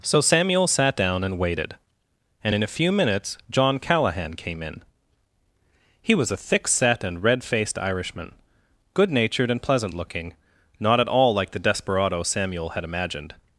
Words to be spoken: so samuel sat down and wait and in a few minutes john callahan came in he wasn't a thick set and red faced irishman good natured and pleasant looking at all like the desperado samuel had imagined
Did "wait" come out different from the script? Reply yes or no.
yes